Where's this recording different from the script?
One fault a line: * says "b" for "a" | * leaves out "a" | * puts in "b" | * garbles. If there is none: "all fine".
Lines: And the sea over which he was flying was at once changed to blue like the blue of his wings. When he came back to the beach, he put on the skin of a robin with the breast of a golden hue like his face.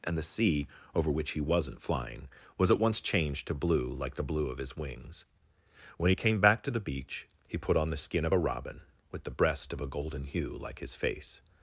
* says "wasn't" for "was"